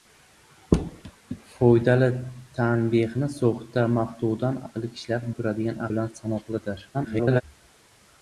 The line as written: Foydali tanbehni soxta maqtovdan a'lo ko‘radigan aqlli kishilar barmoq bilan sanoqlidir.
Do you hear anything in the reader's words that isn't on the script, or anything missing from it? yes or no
yes